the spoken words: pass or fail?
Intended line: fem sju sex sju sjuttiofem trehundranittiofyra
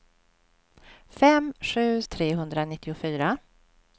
fail